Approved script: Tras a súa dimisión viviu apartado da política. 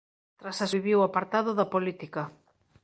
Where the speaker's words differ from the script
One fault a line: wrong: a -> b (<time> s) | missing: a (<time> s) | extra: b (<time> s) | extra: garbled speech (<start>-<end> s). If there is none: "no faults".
missing: súa dimisión (0.7 s)